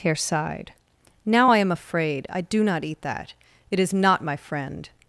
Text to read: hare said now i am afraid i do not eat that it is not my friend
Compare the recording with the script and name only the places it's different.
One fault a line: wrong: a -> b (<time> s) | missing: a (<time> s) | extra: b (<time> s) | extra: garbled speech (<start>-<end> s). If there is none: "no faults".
wrong: said -> sighed (0.1 s)